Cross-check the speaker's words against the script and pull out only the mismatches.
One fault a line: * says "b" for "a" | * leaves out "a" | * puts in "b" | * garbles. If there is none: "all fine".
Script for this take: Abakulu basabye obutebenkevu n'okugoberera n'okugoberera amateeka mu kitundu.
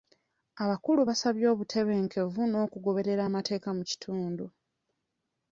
* leaves out "n'okugoberera"